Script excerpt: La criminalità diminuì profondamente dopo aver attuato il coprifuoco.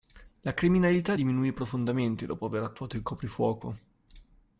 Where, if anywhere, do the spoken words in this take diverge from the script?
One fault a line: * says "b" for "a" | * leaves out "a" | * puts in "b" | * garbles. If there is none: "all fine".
all fine